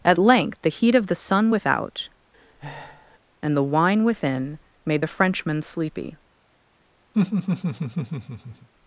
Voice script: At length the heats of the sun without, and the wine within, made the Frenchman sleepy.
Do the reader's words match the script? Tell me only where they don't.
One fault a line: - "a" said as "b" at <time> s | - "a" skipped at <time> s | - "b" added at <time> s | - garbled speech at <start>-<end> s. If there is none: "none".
- "heats" said as "heat" at 0.7 s